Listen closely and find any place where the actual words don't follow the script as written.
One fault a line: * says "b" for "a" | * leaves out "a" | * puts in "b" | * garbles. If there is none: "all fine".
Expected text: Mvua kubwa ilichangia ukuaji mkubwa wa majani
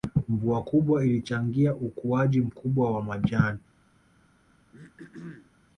all fine